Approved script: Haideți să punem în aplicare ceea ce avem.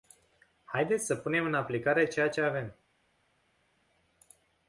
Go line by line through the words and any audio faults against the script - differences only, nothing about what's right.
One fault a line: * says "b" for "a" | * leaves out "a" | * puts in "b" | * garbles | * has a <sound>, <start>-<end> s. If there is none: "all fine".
all fine